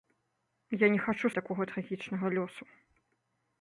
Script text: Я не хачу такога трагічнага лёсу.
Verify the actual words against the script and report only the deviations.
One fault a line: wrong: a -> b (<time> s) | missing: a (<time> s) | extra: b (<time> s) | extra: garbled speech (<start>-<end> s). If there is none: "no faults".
no faults